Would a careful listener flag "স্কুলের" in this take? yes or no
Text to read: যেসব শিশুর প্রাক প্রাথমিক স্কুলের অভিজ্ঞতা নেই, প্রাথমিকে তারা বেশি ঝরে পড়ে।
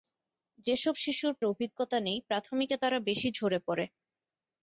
yes